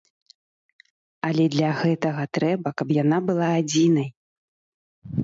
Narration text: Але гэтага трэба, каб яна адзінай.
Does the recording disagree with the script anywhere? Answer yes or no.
yes